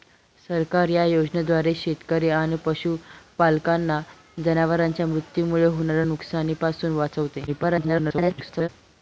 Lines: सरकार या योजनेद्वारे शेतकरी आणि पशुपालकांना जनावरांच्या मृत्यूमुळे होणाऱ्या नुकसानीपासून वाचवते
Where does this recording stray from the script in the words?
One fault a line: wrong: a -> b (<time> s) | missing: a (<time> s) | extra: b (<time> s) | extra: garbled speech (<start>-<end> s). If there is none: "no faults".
extra: garbled speech (7.5-8.7 s)